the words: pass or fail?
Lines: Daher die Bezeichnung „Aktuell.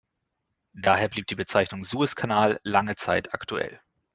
fail